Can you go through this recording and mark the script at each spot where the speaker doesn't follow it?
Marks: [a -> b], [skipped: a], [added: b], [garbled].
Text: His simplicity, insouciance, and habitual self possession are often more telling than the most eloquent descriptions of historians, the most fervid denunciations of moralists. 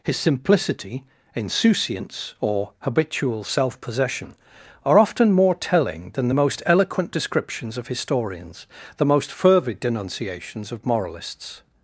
His simplicity, insouciance, [and -> or] habitual self possession are often more telling than the most eloquent descriptions of historians, the most fervid denunciations of moralists.